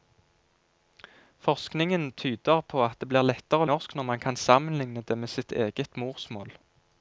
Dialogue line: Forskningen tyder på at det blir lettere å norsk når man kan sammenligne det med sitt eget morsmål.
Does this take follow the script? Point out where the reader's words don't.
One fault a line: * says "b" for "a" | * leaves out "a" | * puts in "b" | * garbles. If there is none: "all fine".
all fine